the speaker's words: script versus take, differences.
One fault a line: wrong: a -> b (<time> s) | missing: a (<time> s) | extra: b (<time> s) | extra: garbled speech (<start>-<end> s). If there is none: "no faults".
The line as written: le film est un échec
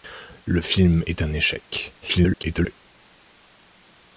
extra: garbled speech (2.0-2.8 s)